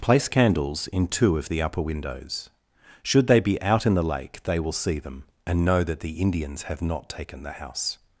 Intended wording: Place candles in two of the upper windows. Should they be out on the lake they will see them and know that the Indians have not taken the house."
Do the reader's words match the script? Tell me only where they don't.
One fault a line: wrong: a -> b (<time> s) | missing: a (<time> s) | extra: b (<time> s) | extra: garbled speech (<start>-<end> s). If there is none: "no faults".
wrong: on -> in (3.9 s)